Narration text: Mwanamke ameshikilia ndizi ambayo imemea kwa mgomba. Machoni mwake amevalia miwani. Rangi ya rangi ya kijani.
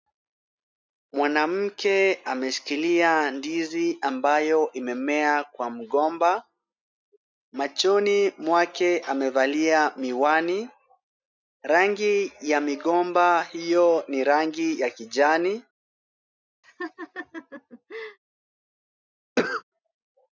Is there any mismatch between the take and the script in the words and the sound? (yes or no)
yes